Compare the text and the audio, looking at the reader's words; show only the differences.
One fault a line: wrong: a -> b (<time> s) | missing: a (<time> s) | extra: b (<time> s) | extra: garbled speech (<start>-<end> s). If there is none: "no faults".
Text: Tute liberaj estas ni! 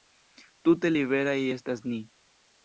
no faults